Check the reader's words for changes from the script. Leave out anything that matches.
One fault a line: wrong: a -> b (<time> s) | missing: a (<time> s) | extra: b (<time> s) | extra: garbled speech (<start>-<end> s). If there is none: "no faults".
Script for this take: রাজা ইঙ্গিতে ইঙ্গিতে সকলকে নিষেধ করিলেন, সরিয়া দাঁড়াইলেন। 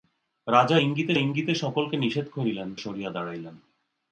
no faults